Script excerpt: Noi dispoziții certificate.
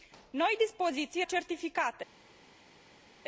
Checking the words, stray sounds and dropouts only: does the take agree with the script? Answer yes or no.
yes